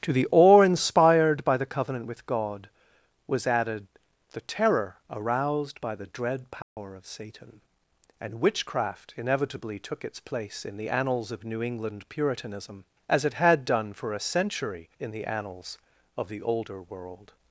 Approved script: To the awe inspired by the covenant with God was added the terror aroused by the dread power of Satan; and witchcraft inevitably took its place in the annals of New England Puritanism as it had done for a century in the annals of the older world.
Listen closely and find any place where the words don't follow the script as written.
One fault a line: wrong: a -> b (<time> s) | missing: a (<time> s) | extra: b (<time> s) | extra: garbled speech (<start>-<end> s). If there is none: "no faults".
no faults